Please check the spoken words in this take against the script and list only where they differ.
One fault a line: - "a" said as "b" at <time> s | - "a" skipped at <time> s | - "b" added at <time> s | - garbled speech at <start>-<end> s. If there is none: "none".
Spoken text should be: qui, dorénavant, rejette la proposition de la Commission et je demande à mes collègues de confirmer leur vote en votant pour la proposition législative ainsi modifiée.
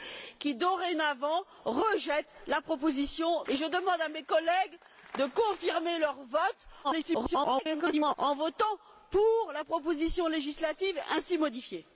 - "de la Commission" skipped at 3.5 s
- garbled speech at 6.8-8.2 s